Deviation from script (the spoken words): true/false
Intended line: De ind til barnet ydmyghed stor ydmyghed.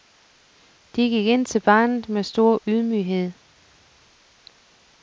true